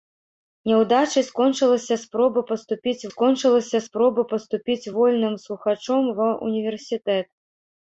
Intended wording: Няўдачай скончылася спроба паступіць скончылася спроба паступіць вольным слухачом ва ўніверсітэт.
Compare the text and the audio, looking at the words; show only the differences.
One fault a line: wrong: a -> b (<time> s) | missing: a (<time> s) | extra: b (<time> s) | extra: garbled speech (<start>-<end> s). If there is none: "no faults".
no faults